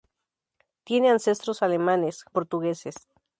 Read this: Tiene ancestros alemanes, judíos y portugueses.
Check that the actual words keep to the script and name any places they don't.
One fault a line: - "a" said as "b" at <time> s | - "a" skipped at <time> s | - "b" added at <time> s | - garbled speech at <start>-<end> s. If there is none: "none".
- "judíos y" skipped at 2.2 s